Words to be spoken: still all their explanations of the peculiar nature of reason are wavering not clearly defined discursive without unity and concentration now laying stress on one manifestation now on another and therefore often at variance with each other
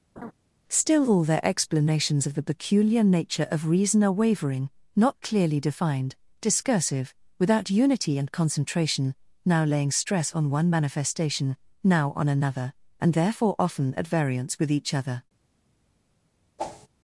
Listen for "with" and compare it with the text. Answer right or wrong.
right